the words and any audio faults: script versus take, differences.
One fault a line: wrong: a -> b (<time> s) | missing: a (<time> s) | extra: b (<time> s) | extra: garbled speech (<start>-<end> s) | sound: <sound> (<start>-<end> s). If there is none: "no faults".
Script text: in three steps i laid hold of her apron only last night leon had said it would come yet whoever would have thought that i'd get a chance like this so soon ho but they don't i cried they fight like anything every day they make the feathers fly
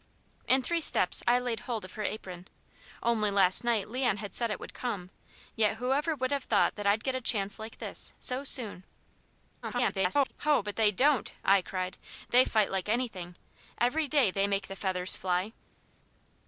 extra: garbled speech (9.6-10.3 s)